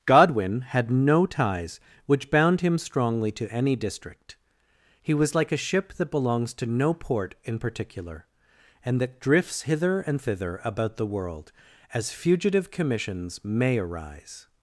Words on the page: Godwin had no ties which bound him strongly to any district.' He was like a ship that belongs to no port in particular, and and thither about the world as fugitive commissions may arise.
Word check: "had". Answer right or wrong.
right